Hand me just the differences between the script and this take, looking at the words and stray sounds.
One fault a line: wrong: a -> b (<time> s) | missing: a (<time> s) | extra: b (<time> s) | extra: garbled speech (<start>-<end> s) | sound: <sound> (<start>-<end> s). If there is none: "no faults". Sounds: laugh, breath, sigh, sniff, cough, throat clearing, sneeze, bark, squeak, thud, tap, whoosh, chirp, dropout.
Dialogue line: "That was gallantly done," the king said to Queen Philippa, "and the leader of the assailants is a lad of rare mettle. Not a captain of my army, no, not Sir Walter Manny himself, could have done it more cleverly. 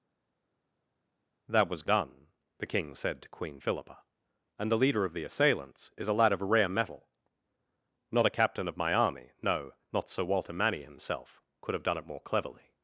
missing: gallantly (1.8 s)